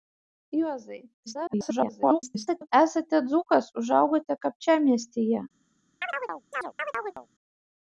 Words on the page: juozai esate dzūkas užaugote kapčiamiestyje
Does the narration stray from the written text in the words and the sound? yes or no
yes